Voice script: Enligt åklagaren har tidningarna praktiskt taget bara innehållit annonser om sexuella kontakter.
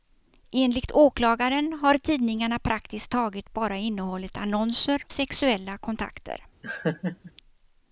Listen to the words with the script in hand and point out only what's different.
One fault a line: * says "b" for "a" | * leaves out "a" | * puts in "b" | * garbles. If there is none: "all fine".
* leaves out "om"